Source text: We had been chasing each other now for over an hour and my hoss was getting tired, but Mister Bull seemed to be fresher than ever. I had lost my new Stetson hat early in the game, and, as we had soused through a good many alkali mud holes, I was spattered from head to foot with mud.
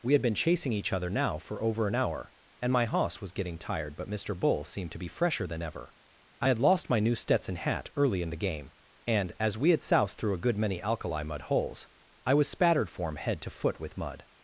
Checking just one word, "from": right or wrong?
wrong